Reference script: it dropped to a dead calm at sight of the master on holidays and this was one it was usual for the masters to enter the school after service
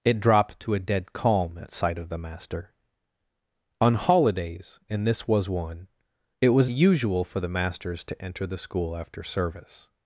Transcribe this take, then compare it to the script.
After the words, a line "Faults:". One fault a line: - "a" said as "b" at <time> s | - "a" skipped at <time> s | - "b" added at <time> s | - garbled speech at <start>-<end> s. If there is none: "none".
it dropped to a dead calm at sight of the master on holidays and this was one it was usual for the masters to enter the school after service
Faults:
none